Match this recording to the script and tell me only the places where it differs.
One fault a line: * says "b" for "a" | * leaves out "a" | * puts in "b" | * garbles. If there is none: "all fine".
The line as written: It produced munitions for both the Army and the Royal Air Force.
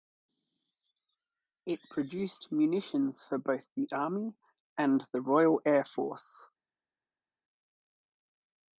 all fine